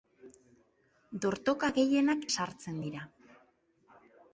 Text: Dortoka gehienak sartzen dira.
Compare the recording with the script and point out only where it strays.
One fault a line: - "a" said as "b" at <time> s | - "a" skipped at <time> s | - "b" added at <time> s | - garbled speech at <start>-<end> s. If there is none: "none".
none